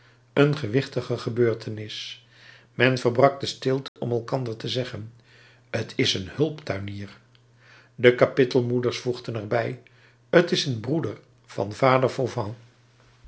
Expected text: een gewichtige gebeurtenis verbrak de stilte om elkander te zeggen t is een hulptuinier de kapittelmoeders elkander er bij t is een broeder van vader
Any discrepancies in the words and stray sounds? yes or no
yes